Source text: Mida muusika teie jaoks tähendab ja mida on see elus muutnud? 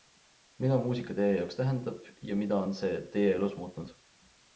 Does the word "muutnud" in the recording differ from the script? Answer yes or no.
no